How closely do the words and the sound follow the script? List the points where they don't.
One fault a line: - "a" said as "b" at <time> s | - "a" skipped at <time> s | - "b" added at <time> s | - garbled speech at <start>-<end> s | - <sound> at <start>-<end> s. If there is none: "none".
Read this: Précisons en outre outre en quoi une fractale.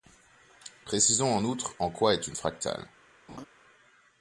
- "outre" skipped at 1.8 s
- "est" added at 2.1 s
- laugh at 3.3-3.5 s